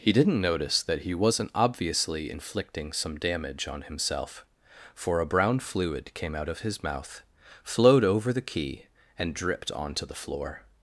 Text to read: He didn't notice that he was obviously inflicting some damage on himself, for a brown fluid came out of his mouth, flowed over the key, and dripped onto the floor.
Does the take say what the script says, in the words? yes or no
no